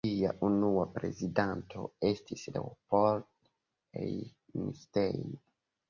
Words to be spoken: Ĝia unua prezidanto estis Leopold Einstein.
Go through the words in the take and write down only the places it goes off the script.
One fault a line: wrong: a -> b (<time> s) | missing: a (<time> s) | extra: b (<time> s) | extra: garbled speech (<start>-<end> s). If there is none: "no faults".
no faults